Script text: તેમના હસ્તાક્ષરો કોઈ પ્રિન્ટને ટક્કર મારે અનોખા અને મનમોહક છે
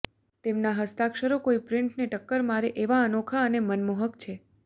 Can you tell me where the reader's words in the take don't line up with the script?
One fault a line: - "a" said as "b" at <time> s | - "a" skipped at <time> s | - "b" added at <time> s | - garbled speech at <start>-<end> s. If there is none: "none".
- "એવા" added at 2.8 s